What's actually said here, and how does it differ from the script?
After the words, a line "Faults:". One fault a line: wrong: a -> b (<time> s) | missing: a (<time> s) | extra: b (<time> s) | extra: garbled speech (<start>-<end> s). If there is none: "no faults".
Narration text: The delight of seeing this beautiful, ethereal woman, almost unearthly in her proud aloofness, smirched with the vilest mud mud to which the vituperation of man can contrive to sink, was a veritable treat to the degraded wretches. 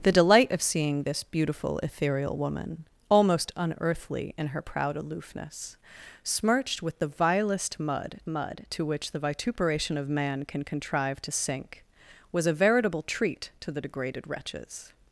The delight of seeing this beautiful, ethereal woman, almost unearthly in her proud aloofness, smirched with the vilest mud mud to which the vituperation of man can contrive to sink, was a veritable treat to the degraded wretches.
Faults:
no faults